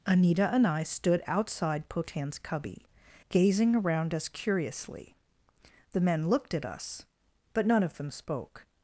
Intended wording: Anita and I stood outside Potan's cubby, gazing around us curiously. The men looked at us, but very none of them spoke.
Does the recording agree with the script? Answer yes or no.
no